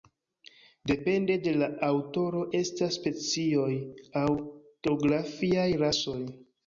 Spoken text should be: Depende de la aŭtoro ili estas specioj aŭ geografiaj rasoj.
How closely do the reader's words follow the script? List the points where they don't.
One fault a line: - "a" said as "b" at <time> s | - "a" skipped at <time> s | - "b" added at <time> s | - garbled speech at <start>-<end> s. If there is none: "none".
- "ili" skipped at 2.4 s